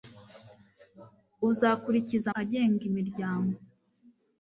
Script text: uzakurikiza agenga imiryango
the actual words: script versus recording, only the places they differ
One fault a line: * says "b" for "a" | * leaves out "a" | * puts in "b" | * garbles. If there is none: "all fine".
all fine